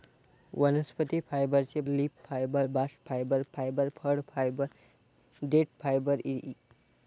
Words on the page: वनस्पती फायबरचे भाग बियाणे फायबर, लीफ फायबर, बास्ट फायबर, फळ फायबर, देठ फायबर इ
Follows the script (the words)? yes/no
no